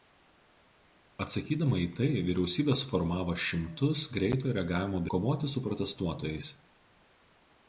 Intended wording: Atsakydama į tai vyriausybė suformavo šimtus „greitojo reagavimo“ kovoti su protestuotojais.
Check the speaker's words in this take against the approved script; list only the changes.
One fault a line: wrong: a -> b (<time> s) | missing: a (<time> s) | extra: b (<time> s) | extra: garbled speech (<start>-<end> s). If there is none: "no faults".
no faults